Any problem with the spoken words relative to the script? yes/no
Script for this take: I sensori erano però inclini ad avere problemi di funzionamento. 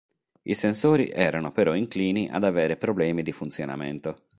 no